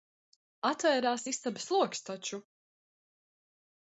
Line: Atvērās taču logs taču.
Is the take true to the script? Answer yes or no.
no